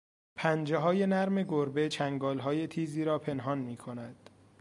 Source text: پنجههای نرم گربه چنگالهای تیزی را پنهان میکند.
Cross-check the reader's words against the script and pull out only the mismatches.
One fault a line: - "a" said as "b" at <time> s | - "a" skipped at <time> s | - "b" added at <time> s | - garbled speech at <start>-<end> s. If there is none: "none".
none